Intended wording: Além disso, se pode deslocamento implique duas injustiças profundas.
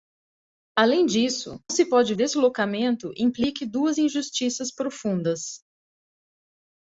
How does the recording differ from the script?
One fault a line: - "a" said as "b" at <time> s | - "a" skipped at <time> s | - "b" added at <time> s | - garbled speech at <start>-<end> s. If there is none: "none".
none